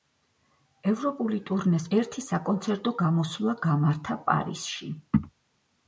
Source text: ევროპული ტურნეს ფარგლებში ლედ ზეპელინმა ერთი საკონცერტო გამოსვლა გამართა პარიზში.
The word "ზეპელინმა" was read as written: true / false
false